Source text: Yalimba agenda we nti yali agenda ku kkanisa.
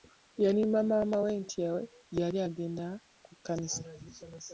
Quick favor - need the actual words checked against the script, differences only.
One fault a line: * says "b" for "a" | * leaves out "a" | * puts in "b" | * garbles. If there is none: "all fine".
* says "maama" for "agenda"